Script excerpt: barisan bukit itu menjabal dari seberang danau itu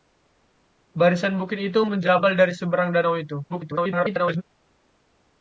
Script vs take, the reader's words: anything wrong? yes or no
yes